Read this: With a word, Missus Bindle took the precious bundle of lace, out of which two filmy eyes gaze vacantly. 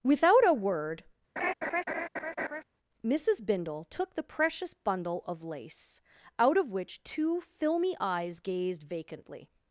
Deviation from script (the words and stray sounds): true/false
true